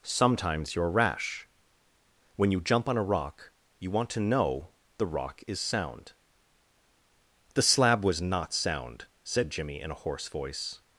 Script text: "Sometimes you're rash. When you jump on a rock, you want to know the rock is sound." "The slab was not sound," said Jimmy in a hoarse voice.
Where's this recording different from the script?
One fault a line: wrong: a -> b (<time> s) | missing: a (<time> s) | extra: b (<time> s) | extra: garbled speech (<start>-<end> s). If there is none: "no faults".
no faults